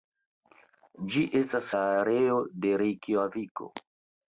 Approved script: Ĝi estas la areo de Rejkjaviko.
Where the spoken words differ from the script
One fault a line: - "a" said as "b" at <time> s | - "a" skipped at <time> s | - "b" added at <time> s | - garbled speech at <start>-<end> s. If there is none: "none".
none